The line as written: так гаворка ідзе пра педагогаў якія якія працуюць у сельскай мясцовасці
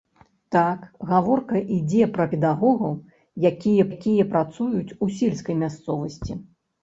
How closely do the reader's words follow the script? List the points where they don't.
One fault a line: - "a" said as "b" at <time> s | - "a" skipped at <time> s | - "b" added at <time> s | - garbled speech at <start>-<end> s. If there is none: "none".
none